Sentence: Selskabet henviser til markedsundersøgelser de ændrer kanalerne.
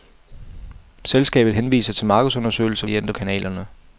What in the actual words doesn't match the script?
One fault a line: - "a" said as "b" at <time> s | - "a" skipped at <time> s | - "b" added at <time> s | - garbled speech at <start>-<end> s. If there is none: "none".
none